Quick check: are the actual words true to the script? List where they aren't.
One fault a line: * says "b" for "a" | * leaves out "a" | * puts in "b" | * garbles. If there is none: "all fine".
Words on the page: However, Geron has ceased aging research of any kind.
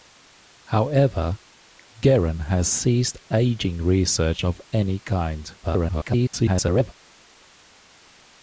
* garbles